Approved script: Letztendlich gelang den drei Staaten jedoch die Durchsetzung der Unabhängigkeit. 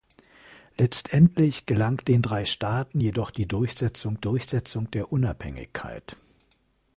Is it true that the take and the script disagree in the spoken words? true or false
true